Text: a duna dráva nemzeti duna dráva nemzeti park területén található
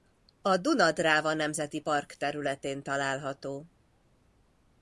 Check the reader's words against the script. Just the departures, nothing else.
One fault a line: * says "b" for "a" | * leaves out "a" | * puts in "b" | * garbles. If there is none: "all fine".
* leaves out "duna dráva nemzeti"